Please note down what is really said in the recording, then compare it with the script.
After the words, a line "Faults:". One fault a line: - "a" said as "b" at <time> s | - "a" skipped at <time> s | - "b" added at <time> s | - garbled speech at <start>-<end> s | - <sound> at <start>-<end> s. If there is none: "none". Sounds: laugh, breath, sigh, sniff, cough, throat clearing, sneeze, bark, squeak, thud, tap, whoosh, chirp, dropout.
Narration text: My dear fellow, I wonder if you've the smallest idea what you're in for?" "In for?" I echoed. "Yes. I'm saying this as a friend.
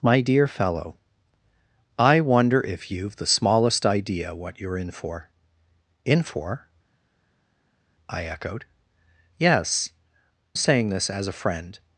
My dear fellow, I wonder if you've the smallest idea what you're in for?" "In for?" I echoed. "Yes. Saying this as a friend.
Faults:
- "I'm" skipped at 9.9 s